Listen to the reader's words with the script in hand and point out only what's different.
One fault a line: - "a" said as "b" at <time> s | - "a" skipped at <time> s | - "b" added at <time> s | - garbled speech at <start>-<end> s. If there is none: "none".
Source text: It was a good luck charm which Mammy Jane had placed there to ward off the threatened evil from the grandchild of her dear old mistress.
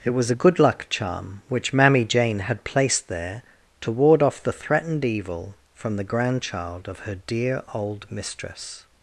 none